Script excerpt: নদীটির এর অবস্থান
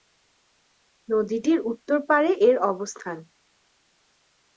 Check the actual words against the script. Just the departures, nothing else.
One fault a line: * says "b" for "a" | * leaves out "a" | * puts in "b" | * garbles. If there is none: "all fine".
* puts in "উত্তর পাড়ে"